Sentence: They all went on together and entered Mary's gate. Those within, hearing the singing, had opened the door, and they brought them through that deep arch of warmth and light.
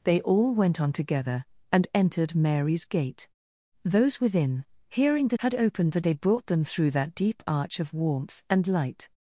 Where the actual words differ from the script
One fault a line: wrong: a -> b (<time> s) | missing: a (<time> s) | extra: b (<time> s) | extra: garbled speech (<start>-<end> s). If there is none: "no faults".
missing: singing (5.4 s)
missing: door and (6.0 s)